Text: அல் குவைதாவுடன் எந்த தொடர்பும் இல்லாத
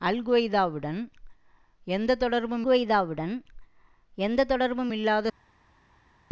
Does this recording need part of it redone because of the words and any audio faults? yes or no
yes